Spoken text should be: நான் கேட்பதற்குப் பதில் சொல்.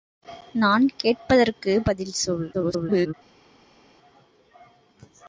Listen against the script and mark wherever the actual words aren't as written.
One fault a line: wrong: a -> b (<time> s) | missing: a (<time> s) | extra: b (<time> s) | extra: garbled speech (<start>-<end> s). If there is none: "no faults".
extra: garbled speech (2.5-3.1 s)